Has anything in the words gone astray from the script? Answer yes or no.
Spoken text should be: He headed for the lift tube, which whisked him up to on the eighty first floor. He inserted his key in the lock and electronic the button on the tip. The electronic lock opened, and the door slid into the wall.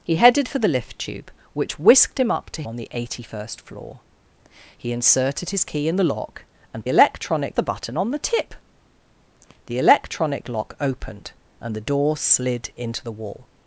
no